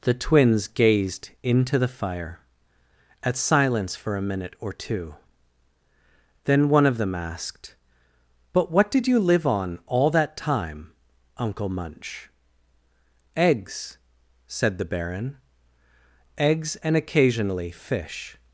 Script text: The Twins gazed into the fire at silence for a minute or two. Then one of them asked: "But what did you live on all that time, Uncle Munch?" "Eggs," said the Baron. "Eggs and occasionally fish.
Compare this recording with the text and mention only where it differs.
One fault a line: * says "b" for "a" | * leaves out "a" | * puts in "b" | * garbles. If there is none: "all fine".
all fine